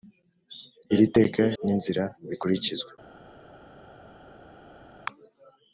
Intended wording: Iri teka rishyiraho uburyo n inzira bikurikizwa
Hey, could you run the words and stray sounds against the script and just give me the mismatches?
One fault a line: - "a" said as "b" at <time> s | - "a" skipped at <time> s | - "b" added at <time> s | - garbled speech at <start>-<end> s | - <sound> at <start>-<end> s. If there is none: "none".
- "rishyiraho uburyo" skipped at 1.4 s